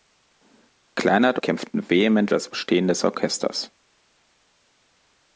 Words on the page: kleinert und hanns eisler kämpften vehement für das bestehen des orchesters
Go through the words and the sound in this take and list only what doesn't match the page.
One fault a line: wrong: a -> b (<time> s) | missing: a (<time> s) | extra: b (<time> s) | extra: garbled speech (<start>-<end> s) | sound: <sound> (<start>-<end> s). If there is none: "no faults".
missing: und hanns eisler (1.4 s)
missing: für (2.3 s)